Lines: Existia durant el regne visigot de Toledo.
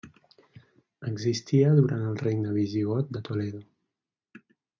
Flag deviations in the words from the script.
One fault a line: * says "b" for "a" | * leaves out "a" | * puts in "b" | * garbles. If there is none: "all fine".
all fine